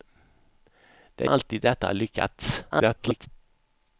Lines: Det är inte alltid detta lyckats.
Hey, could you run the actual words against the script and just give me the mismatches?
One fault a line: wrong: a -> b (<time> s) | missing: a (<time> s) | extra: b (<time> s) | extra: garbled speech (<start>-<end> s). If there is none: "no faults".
missing: inte (1.3 s)
extra: garbled speech (2.7-3.3 s)